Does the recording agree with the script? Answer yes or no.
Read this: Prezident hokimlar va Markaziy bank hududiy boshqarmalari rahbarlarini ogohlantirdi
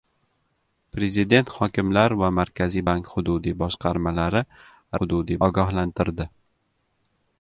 no